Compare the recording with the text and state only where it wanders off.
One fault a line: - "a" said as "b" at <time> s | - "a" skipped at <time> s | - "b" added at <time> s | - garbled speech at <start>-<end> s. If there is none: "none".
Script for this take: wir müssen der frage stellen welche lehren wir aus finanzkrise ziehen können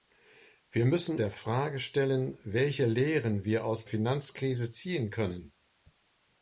none